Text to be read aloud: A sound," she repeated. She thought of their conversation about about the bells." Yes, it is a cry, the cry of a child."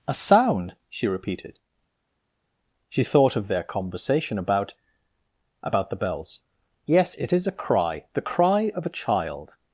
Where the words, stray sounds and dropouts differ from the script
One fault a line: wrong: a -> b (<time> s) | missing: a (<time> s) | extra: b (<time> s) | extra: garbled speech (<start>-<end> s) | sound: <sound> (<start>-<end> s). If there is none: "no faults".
no faults